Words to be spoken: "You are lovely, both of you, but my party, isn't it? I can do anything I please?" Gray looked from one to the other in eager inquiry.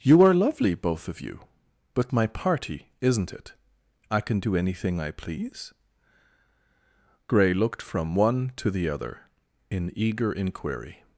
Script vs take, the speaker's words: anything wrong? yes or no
no